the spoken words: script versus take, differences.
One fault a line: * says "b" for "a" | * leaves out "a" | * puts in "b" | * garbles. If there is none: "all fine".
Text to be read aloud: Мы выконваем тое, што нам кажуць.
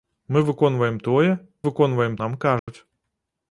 * says "выконваем" for "што"